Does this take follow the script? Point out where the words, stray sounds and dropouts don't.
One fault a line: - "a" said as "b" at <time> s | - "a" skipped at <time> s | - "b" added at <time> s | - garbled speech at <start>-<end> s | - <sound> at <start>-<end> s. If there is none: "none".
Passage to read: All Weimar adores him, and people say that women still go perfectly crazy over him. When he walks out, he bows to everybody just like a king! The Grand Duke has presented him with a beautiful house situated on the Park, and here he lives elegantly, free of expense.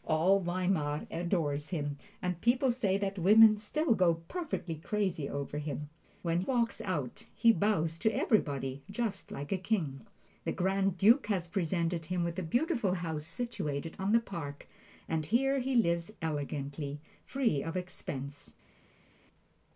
- "he" skipped at 6.4 s